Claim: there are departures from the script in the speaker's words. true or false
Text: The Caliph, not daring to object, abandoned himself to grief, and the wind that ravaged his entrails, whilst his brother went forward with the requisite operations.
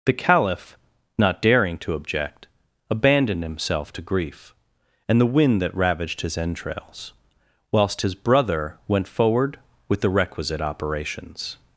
false